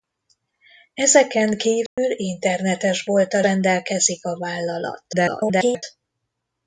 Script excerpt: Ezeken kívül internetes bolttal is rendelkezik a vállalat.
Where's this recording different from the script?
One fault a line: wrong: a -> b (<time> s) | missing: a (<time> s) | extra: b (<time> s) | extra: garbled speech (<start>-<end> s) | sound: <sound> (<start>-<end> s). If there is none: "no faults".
sound: dropout (1.9-2.0 s)
missing: is (3.4 s)
extra: garbled speech (5.1-5.8 s)